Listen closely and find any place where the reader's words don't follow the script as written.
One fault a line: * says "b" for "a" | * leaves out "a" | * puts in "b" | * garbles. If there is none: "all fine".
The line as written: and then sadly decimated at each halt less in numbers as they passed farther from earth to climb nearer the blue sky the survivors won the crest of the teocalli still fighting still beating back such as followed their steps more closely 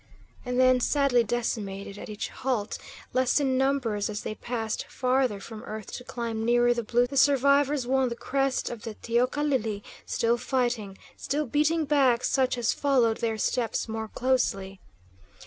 * leaves out "sky"